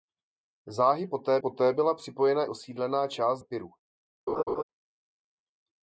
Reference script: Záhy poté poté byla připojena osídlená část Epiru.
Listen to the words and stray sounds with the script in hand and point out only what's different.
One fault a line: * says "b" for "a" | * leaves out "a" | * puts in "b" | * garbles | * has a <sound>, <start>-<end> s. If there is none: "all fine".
* has a laugh, 4.3-4.6 s